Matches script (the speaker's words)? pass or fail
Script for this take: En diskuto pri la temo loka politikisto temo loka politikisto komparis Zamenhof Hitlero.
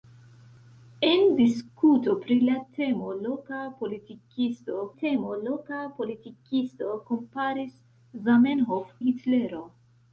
pass